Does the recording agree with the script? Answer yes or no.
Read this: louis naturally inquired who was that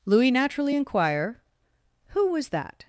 no